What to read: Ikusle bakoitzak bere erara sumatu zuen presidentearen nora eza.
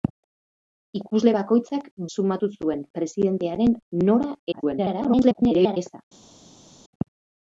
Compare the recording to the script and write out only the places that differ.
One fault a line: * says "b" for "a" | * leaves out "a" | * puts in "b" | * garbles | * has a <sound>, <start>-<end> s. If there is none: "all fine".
* leaves out "bere erara"
* garbles